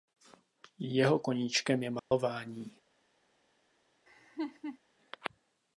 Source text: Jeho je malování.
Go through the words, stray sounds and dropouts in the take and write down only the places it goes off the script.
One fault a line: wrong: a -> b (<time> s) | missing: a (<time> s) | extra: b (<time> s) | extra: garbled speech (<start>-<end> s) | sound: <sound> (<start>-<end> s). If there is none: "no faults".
extra: koníčkem (1.2 s)
sound: dropout (2.0-2.1 s)
sound: laugh (4.1-4.8 s)